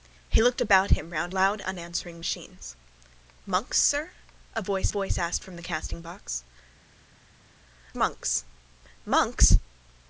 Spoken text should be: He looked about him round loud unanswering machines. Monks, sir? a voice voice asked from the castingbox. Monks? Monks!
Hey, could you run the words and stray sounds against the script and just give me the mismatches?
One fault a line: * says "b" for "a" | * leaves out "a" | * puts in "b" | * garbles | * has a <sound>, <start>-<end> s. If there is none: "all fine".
all fine